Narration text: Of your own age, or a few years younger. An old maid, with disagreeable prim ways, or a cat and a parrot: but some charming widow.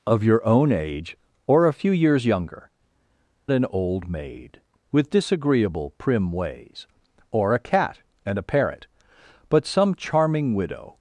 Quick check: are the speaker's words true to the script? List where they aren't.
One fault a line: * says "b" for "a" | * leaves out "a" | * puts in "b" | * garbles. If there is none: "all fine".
all fine